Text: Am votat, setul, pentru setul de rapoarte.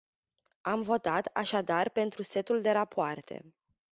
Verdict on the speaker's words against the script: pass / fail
fail